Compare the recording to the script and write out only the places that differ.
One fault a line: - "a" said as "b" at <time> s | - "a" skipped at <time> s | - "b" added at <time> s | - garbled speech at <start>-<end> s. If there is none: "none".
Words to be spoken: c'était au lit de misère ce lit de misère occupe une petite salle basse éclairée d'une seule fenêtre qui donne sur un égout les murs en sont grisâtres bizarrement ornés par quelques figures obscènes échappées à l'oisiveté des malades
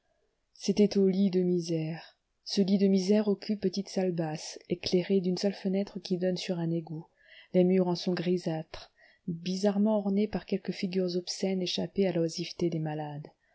- "une" skipped at 3.6 s